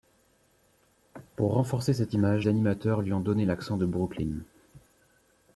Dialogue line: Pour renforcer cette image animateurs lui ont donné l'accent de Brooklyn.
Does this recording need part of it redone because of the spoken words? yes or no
no